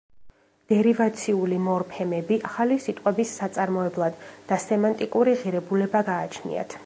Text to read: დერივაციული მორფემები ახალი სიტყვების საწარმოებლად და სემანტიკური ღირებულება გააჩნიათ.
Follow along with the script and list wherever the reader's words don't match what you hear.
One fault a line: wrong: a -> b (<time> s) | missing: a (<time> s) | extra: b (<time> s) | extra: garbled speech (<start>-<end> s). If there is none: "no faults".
no faults